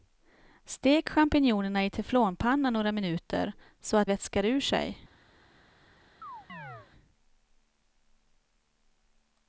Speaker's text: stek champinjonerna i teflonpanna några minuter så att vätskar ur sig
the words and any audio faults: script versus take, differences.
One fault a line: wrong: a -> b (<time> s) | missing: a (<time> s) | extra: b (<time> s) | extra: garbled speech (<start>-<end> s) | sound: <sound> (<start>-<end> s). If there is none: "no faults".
sound: chirp (6.2-6.9 s)